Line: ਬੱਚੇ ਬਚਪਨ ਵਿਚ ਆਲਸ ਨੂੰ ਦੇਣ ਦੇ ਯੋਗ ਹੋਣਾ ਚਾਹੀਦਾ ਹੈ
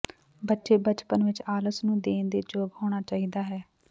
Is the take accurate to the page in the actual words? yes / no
yes